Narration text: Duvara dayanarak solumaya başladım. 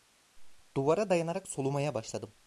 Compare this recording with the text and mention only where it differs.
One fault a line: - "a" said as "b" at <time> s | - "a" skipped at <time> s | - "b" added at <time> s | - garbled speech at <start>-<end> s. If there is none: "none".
none